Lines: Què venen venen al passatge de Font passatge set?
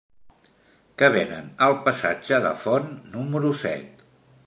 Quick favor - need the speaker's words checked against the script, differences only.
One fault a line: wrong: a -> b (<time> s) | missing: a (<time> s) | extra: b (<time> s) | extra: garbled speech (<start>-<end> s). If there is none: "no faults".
missing: venen (1.5 s)
wrong: passatge -> número (3.2 s)